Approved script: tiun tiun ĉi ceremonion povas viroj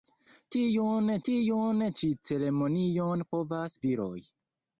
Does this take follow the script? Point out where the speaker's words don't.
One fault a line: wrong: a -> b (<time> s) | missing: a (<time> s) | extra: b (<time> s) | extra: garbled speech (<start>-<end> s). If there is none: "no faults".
no faults